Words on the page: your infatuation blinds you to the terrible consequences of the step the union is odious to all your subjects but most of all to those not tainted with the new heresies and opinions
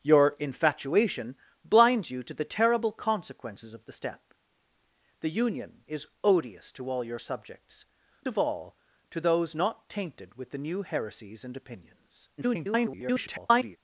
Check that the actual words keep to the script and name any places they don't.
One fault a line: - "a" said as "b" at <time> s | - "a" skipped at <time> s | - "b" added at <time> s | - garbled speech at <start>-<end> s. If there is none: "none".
- "but most" skipped at 7.9 s
- garbled speech at 12.4-13.8 s